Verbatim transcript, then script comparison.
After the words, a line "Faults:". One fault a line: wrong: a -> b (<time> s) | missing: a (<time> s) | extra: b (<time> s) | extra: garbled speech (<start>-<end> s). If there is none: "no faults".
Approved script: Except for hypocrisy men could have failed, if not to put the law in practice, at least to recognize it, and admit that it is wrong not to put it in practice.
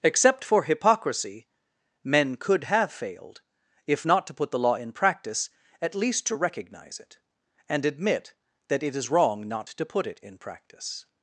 Except for hypocrisy men could have failed, if not to put the law in practice, at least to recognize it, and admit that it is wrong not to put it in practice.
Faults:
no faults